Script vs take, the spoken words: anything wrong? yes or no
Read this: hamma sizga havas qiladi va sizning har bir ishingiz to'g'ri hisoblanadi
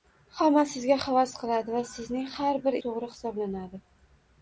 yes